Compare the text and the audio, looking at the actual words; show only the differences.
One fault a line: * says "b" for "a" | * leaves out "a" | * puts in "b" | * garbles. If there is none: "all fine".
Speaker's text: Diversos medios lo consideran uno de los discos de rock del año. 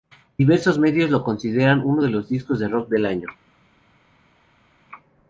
all fine